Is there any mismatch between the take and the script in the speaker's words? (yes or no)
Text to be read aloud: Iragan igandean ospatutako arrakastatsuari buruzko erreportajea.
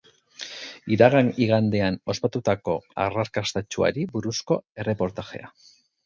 no